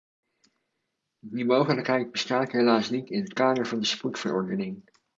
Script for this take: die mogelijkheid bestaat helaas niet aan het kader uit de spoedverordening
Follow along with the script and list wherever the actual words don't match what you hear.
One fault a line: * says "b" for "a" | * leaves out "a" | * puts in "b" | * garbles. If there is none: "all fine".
* says "in" for "aan"
* says "van" for "uit"